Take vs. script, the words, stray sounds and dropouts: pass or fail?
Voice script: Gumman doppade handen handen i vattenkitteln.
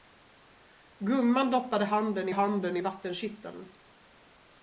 pass